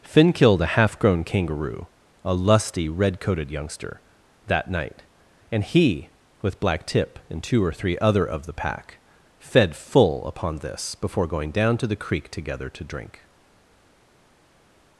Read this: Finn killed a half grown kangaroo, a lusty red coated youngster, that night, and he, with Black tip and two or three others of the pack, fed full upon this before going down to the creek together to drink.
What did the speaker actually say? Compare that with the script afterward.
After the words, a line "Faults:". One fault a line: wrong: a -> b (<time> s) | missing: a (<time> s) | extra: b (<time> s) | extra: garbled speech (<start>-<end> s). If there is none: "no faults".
Finn killed a half grown kangaroo, a lusty red coated youngster, that night, and he, with Black tip and two or three other of the pack, fed full upon this before going down to the creek together to drink.
Faults:
wrong: others -> other (8.0 s)